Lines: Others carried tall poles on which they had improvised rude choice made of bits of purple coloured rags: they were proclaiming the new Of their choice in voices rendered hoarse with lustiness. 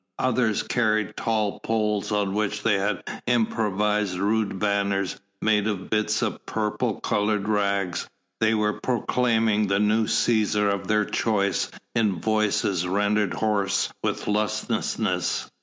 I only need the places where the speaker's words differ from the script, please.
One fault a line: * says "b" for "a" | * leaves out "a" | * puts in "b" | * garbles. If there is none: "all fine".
* says "banners" for "choice"
* puts in "Cæsar"